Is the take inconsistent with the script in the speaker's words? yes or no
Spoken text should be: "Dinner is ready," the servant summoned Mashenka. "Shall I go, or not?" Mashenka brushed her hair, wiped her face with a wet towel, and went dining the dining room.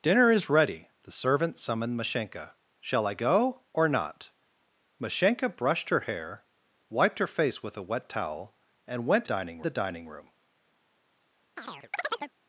no